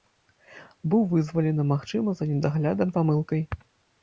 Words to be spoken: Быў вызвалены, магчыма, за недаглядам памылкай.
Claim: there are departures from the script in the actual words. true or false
false